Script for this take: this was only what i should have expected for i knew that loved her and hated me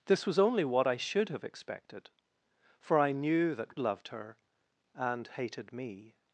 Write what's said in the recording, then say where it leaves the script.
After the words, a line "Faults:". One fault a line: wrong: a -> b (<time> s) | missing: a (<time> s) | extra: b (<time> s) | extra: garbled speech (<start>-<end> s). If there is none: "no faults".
this was only what i should have expected for i knew that loved her and hated me
Faults:
no faults